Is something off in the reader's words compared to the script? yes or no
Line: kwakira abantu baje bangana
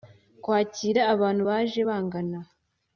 no